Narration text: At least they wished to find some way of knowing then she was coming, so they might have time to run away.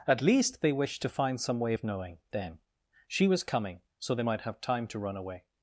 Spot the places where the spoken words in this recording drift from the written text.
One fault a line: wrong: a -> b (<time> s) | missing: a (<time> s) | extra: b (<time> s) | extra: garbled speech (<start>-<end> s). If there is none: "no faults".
no faults